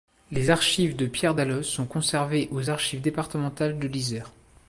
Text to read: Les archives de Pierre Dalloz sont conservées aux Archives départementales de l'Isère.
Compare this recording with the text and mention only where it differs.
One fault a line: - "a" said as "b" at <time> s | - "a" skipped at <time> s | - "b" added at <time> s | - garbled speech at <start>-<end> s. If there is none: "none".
none